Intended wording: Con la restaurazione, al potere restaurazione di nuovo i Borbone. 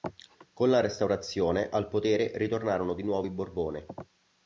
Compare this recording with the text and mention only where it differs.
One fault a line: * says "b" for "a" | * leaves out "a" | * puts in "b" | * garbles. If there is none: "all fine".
* says "ritornarono" for "restaurazione"